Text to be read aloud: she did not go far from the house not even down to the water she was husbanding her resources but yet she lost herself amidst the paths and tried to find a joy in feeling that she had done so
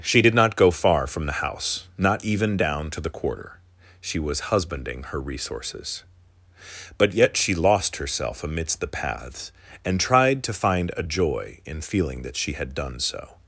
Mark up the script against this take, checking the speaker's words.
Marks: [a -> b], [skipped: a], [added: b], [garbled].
she did not go far from the house not even down to the [water -> quarter] she was husbanding her resources but yet she lost herself amidst the paths and tried to find a joy in feeling that she had done so